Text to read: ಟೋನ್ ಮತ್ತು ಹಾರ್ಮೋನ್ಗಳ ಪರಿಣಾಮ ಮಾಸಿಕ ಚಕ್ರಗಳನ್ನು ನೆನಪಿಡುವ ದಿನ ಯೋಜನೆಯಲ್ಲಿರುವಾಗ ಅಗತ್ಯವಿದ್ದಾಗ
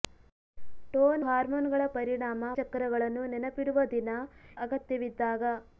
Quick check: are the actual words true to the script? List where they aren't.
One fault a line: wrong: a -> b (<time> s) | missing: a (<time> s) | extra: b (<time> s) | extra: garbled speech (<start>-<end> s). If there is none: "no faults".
missing: ಮತ್ತು (1.2 s)
missing: ಮಾಸಿಕ (2.4 s)
missing: ಯೋಜನೆಯಲ್ಲಿರುವಾಗ (4.1 s)